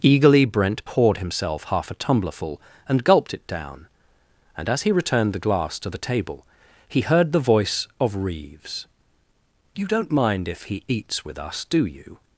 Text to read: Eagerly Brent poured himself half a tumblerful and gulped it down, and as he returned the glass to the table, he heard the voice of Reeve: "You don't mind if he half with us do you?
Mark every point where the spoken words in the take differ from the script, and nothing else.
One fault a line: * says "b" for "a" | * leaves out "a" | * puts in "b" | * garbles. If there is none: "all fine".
* says "Reeves" for "Reeve"
* says "eats" for "half"